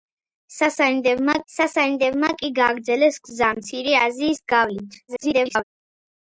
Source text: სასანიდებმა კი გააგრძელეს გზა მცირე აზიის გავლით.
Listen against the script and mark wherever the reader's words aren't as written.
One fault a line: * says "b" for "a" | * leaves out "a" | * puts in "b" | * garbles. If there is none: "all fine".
* puts in "სასანიდებმა"
* garbles